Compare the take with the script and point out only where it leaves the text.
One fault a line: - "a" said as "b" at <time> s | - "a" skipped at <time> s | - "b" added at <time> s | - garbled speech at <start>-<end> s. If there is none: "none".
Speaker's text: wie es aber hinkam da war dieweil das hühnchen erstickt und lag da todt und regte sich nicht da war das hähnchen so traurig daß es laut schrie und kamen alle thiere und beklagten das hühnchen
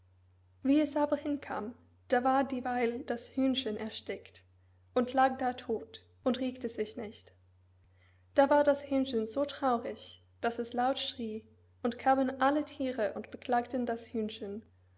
none